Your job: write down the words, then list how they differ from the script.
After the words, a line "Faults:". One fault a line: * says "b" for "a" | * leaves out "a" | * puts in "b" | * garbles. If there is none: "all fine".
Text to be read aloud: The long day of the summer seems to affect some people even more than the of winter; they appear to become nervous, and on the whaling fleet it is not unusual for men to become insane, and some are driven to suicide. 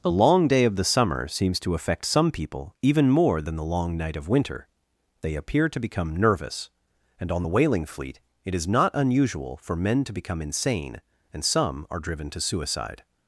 The long day of the summer seems to affect some people even more than the long night of winter; they appear to become nervous, and on the whaling fleet it is not unusual for men to become insane, and some are driven to suicide.
Faults:
* puts in "long night"